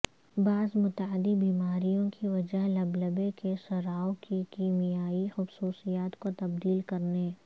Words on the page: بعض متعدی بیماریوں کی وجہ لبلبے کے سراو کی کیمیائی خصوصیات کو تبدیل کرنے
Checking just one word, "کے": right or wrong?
right